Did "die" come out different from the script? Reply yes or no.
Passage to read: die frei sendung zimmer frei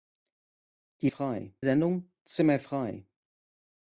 no